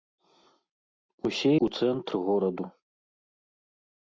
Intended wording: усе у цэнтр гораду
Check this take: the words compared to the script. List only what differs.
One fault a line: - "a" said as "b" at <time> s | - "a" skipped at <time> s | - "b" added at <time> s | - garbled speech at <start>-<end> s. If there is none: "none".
none